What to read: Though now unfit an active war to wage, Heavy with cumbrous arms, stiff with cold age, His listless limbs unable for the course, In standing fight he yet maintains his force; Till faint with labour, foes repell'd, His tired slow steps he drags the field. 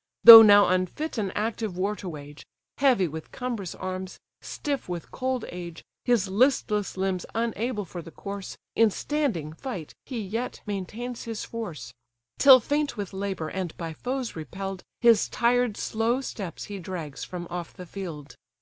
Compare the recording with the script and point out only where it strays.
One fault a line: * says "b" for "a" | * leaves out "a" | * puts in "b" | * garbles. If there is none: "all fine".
* puts in "and by"
* puts in "from off"